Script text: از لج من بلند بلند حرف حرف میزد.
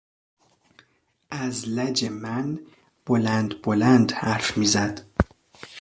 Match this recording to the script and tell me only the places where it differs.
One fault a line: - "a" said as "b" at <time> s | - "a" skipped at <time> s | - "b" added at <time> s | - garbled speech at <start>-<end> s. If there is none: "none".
- "حرف" skipped at 4.6 s